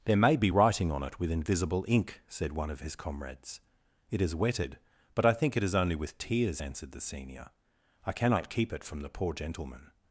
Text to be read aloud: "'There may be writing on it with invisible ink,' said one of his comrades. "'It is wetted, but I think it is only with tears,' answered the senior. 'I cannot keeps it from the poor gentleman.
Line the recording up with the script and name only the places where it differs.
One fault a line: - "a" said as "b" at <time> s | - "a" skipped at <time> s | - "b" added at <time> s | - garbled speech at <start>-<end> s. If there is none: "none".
- "keeps" said as "keep" at 8.5 s